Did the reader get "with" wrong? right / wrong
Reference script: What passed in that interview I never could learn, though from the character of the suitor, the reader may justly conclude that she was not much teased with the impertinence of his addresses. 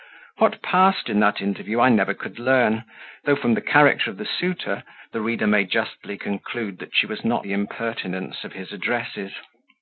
wrong